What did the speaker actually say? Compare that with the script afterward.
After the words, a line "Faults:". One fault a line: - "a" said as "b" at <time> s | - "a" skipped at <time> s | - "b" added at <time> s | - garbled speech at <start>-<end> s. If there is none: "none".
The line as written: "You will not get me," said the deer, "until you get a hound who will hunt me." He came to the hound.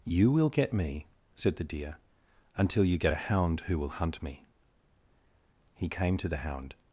"You will get me," said the deer, "until you get a hound who will hunt me." He came to the hound.
Faults:
- "not" skipped at 0.5 s